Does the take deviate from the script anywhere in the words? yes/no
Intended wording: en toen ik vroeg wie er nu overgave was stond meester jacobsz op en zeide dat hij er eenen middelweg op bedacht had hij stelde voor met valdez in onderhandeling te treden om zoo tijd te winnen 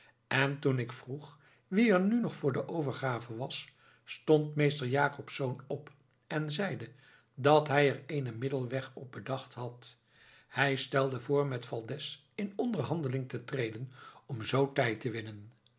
yes